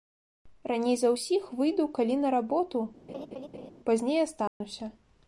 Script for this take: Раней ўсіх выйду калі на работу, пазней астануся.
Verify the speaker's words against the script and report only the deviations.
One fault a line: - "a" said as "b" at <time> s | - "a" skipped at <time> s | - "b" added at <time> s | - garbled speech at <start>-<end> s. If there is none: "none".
- "за" added at 1.0 s